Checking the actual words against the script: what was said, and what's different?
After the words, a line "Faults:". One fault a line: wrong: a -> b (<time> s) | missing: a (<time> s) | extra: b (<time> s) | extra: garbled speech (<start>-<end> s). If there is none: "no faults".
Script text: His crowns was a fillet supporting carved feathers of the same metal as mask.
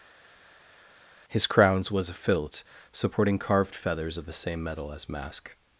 His crowns was a fillet supporting carved feathers of the same metal as mask.
Faults:
no faults